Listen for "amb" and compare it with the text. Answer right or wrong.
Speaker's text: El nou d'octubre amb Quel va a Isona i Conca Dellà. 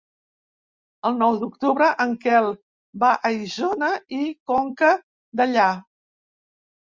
wrong